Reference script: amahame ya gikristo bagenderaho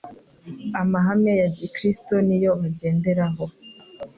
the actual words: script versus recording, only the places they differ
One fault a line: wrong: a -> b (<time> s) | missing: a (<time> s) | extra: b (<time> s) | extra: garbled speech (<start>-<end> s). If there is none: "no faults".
extra: niyo (2.3 s)